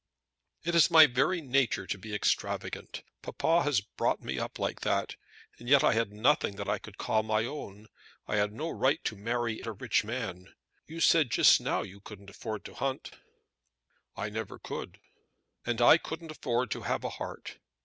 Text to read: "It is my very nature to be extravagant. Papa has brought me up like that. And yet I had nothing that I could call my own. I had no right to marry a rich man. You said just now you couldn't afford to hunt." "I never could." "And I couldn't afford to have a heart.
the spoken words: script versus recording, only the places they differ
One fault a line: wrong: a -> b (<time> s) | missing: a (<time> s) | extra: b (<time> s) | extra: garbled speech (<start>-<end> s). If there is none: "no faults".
no faults